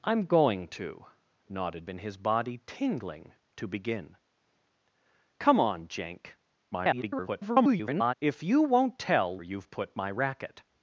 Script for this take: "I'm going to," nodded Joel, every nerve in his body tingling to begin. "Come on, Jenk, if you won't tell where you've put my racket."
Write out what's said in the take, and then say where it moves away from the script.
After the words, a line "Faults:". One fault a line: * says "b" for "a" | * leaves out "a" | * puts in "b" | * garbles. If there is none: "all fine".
"I'm going to," nodded In his body tingling to begin. "Come on, Jenk, [garbled] if you won't tell you've put my racket."
Faults:
* leaves out "Joel every nerve"
* garbles
* leaves out "where"